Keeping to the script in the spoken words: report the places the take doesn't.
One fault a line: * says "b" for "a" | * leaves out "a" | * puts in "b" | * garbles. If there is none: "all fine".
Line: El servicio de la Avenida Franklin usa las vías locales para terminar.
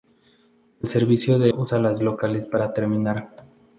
* leaves out "la Avenida Franklin"
* leaves out "vías"